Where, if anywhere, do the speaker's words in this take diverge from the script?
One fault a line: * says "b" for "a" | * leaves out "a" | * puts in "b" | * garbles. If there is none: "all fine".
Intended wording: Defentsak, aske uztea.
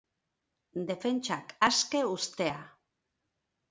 all fine